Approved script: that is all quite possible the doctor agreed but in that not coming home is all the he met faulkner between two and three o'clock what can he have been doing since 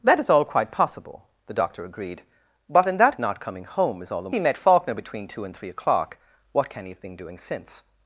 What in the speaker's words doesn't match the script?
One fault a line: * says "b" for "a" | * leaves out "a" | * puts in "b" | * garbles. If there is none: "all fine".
all fine